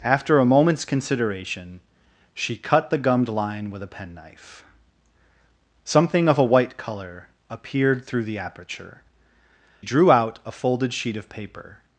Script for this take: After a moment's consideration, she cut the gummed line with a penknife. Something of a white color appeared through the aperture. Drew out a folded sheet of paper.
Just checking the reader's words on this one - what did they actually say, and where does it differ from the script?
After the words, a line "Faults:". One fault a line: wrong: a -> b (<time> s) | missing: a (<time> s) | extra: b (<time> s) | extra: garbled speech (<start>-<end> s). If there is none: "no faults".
After a moment's consideration, she cut the gummed line with a penknife. Something of a white color appeared through the aperture. Drew out a folded sheet of paper.
Faults:
no faults